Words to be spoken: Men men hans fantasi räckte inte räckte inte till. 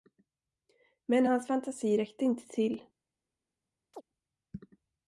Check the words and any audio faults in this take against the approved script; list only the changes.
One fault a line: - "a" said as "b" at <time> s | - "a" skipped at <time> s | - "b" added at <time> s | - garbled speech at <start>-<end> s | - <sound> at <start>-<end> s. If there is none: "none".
- "men" skipped at 1.2 s
- "räckte inte" skipped at 2.5 s
- chirp at 3.9-4.0 s